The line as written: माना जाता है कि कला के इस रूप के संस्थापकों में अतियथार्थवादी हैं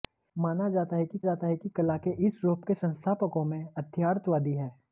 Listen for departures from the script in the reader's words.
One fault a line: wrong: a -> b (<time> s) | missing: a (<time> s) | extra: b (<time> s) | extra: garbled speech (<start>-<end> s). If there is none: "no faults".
extra: जाता है कि (1.2 s)